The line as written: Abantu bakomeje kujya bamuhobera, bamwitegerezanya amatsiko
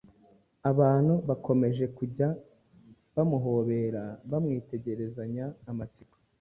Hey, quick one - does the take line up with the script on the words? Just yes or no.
yes